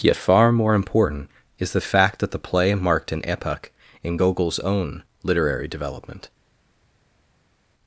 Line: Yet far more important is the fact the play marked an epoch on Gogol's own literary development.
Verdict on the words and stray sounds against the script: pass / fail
fail